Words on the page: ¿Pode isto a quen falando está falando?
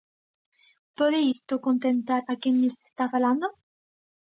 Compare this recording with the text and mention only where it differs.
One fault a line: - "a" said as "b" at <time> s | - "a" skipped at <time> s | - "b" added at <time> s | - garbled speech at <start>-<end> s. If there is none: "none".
- "contentar" added at 1.7 s
- "falando" said as "lles" at 2.6 s